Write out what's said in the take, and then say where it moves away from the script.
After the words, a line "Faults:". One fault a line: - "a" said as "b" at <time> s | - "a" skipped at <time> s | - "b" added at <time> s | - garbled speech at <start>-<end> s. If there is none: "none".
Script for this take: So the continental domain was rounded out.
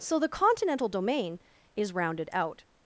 So the continental domain is rounded out.
Faults:
- "was" said as "is" at 1.8 s